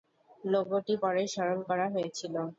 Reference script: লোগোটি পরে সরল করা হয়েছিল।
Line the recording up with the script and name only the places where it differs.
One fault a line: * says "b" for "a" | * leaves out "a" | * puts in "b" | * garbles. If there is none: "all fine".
all fine